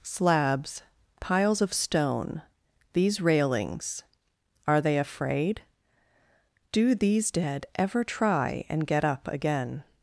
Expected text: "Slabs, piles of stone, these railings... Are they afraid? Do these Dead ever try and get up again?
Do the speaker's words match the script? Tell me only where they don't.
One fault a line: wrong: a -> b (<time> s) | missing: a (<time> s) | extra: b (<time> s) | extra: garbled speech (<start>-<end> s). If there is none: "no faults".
no faults